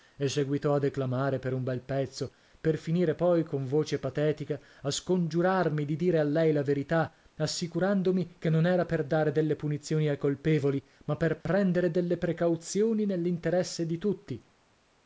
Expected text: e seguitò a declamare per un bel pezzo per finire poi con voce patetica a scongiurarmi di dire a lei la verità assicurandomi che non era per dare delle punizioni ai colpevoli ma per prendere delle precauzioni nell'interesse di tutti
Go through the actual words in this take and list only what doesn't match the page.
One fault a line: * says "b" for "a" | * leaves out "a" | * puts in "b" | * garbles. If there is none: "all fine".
all fine